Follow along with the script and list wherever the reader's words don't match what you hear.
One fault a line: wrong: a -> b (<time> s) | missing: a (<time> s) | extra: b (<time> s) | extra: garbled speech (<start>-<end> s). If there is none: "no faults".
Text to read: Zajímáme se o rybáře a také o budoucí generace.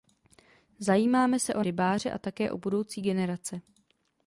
no faults